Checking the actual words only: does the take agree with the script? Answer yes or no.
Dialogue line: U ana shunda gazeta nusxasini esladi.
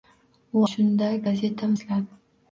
no